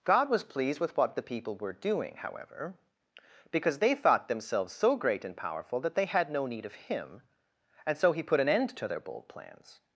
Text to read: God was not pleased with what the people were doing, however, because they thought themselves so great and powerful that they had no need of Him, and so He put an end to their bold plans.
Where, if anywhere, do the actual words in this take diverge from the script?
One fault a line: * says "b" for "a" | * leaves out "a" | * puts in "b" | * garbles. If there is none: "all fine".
* leaves out "not"